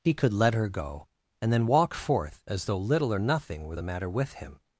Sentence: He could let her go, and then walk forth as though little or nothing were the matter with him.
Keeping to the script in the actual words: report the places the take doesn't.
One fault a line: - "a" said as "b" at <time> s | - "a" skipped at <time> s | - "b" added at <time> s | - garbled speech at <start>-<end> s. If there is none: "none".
none